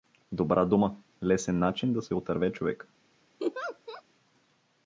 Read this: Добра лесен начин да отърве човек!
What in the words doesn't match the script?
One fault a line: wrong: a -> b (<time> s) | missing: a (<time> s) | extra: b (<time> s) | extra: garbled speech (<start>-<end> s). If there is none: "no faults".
extra: дума (0.7 s)
extra: се (2.0 s)